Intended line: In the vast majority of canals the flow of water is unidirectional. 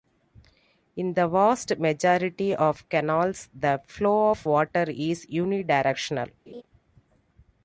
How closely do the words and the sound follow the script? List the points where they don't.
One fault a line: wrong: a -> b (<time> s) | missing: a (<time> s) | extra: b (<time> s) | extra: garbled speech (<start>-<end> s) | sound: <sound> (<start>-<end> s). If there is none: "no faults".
sound: laugh (6.5-6.6 s)